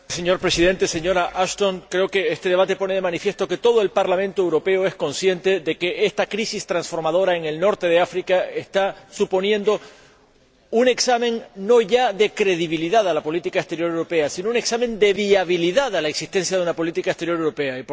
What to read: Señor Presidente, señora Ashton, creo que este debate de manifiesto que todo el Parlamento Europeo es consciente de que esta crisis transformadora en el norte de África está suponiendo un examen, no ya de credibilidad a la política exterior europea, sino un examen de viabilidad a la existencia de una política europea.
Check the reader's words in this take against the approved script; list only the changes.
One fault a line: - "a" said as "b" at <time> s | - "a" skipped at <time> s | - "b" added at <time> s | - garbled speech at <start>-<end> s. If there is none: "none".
- "pone" added at 2.8 s
- "exterior" added at 17.1 s